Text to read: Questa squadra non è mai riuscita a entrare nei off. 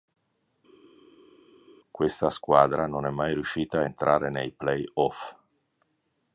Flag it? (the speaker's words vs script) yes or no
yes